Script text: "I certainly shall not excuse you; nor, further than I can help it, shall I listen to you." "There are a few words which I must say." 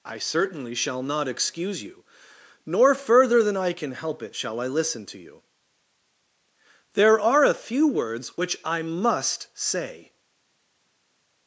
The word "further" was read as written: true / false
true